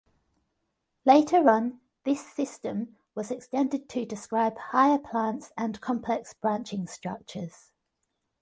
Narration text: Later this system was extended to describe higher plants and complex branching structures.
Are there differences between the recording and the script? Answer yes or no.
yes